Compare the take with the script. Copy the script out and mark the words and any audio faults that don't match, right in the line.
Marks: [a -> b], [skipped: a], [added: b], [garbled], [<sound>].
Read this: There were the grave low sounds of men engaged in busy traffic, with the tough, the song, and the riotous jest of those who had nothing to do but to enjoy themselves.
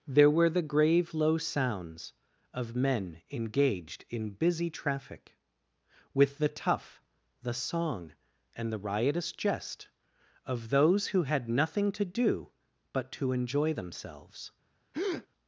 There were the grave low sounds of men engaged in busy traffic, with the tough, the song, and the riotous jest of those who had nothing to do but to enjoy themselves. [breath]